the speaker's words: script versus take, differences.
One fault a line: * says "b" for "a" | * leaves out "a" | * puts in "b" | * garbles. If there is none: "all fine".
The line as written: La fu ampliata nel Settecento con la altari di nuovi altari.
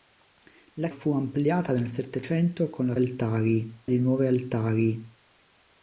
all fine